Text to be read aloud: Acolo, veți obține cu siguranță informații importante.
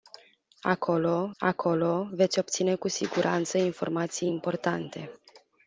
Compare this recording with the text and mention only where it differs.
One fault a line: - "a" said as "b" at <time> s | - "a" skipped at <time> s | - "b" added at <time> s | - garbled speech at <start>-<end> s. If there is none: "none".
- "acolo" added at 1.4 s